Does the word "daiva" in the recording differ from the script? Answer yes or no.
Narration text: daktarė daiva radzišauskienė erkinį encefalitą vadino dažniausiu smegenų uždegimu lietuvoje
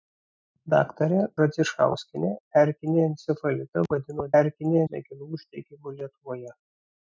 yes